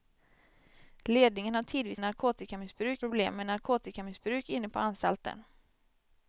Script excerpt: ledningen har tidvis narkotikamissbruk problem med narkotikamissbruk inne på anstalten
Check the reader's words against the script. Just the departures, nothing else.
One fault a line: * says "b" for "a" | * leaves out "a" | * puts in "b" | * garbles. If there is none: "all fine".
all fine